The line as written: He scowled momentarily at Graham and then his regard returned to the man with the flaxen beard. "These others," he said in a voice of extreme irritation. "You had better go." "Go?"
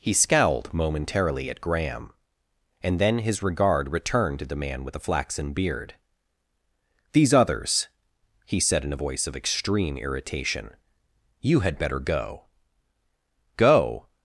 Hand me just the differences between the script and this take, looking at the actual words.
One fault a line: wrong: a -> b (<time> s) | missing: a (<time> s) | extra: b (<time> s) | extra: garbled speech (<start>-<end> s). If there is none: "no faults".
no faults